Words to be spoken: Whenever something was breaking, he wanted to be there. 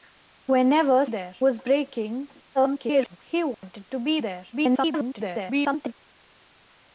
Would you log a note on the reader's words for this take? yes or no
yes